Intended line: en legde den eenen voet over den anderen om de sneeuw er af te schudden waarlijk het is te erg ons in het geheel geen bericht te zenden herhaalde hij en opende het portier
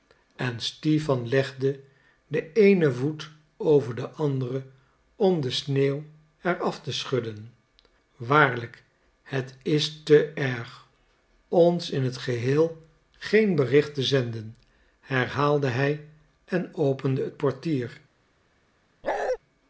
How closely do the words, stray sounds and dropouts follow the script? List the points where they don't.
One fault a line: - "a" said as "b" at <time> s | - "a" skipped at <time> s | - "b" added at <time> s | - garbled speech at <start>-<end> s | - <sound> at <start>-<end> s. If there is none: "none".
- "stipan" added at 0.6 s
- bark at 19.0-19.4 s